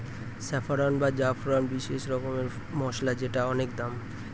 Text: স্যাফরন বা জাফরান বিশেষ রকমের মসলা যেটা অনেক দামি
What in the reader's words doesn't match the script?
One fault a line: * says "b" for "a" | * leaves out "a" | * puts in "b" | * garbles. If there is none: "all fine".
all fine